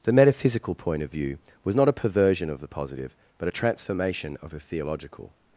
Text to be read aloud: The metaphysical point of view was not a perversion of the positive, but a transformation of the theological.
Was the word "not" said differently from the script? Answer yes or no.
no